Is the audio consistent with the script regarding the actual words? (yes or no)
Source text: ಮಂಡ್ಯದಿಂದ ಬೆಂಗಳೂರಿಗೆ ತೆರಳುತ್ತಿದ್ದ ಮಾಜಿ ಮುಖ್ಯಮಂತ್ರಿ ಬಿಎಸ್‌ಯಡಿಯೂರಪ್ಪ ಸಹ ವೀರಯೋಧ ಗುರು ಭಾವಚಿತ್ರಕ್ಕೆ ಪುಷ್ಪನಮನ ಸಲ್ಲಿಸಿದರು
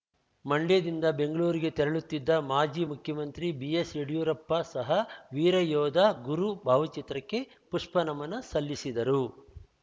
yes